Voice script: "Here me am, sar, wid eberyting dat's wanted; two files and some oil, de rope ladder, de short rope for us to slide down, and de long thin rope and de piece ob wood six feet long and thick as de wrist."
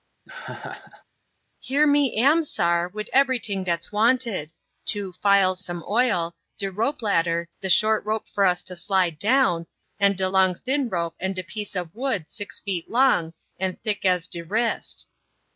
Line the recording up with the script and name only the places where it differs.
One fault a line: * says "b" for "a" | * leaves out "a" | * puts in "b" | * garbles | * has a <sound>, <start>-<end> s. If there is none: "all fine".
* has a laugh, 0.3-1.0 s
* leaves out "and"